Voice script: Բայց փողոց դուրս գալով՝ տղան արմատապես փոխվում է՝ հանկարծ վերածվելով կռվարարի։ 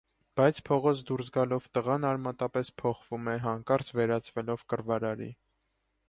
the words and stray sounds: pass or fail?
pass